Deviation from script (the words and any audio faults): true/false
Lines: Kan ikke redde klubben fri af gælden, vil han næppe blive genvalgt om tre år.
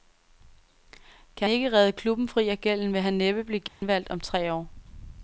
true